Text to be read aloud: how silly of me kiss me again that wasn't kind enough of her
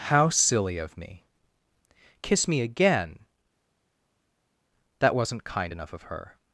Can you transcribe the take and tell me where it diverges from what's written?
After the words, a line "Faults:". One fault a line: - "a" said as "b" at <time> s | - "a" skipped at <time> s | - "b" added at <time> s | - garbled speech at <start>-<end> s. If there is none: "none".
how silly of me kiss me again that wasn't kind enough of her
Faults:
none